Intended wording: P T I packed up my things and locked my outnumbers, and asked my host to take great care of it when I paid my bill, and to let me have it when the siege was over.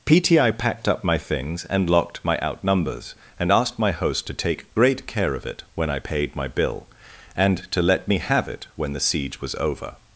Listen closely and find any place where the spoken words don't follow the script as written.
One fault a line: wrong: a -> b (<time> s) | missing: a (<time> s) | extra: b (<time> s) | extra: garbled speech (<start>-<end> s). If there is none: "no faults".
no faults